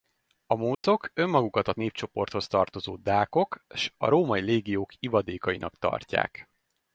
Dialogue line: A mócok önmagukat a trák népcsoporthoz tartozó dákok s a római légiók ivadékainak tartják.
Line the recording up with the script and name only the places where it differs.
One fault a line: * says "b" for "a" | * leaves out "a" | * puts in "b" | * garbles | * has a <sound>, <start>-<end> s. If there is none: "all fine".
* has a dropout, 0.7-0.8 s
* leaves out "trák"